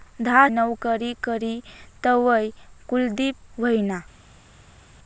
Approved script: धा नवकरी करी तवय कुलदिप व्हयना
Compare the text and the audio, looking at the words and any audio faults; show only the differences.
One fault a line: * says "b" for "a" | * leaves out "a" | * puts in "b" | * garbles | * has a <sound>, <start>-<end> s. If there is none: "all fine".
all fine